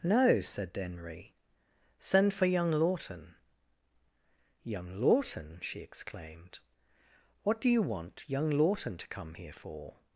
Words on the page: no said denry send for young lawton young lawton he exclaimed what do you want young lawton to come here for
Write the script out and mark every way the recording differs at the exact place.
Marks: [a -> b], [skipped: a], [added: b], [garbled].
no said denry send for young lawton young lawton [he -> she] exclaimed what do you want young lawton to come here for